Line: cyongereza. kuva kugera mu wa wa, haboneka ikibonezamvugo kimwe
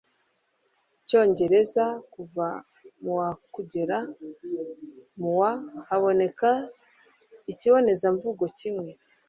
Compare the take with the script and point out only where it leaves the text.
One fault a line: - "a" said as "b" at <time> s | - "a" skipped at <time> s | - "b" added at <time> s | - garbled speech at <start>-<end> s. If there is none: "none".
- "mu wa" added at 3.0 s
- "wa" skipped at 5.5 s